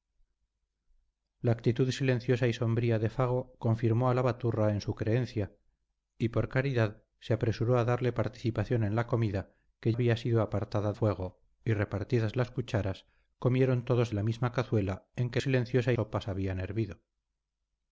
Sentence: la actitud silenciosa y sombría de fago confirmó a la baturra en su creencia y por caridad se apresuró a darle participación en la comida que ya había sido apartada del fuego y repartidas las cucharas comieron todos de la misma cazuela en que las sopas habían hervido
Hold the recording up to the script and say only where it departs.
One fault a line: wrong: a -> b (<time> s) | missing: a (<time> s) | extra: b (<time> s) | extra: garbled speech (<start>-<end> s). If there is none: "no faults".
missing: ya (9.9 s)
missing: del (10.9 s)
wrong: las -> silenciosa (15.4 s)